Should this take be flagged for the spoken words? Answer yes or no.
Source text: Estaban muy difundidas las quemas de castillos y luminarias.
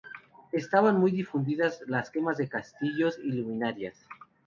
no